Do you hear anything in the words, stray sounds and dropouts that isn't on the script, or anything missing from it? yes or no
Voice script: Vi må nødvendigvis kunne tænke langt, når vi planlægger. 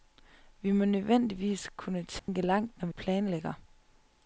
yes